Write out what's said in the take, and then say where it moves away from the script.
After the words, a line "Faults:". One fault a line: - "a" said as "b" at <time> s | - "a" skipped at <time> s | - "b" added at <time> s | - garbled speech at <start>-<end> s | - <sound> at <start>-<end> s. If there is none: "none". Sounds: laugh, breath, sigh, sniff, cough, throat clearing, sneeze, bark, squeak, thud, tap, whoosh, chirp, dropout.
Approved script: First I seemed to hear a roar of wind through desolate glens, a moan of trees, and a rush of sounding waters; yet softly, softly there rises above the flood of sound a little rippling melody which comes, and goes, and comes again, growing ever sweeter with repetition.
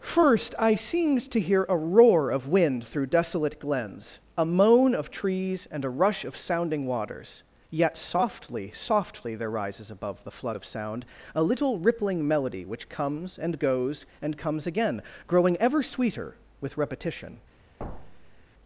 First I seemed to hear a roar of wind through desolate glens, a moan of trees, and a rush of sounding waters; yet softly, softly there rises above the flood of sound a little rippling melody which comes, and goes, and comes again, growing ever sweeter with repetition.
Faults:
- thud at 17.8-18.5 s